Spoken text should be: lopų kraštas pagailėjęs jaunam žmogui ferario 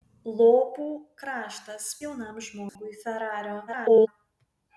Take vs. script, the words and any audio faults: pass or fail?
fail